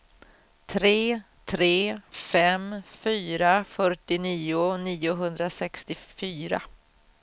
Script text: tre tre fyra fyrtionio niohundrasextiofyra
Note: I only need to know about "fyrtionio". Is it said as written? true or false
true